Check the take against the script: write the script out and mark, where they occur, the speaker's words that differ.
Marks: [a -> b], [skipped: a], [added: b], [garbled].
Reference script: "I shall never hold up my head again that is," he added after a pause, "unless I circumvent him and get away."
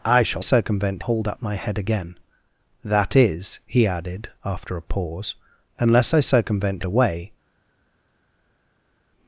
"I shall [never -> circumvent] hold up my head again that is," he added after a pause, "unless I circumvent [skipped: him and get] away."